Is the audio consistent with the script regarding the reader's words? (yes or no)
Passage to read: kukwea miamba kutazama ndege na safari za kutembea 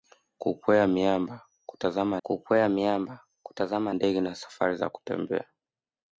no